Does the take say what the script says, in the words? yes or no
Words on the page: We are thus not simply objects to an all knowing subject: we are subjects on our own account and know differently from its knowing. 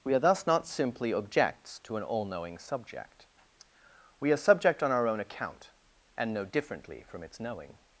no